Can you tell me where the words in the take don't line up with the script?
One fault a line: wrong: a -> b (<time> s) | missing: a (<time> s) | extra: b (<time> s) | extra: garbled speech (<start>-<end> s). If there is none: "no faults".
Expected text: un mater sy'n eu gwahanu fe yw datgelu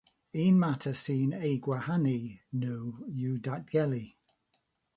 wrong: fe -> nhw (2.6 s)